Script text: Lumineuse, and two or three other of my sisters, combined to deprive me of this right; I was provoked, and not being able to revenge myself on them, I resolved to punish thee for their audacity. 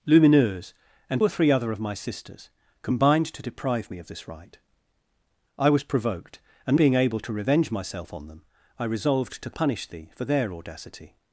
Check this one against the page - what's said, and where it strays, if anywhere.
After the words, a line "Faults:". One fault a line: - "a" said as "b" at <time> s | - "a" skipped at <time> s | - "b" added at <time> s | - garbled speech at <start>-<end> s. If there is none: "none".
Lumineuse, and or three other of my sisters, combined to deprive me of this right; I was provoked, and being able to revenge myself on them, I resolved to punish thee for their audacity.
Faults:
- "two" skipped at 1.2 s
- "not" skipped at 6.8 s